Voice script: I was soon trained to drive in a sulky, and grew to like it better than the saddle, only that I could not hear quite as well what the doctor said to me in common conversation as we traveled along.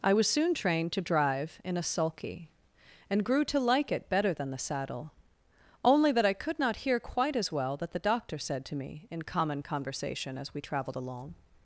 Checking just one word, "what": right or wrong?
wrong